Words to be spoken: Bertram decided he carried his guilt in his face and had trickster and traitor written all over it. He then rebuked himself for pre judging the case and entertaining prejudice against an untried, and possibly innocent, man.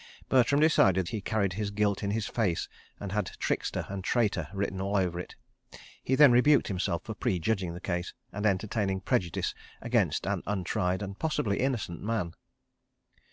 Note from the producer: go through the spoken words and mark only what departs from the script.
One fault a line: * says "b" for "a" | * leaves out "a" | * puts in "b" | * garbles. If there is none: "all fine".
all fine